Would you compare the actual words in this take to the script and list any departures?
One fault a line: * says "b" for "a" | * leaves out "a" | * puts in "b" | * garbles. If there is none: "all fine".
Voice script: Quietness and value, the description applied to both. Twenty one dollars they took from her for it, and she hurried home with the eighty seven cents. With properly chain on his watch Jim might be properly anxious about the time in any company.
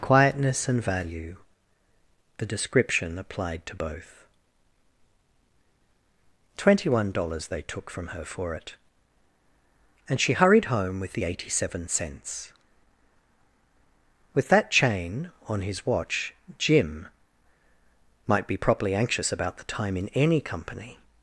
* says "that" for "properly"